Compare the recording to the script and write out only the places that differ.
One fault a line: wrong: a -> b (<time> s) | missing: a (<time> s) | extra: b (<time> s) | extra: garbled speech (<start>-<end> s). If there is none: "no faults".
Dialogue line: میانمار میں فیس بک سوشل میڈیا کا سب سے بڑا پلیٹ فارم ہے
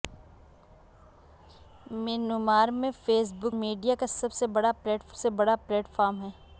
missing: سوشل (3.5 s)
extra: سے بڑا پلیٹ (5.1 s)